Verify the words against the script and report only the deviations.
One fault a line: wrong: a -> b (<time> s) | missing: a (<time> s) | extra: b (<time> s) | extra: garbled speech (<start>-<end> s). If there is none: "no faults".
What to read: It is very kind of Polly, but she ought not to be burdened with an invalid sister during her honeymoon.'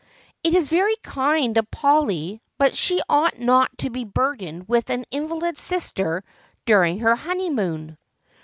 no faults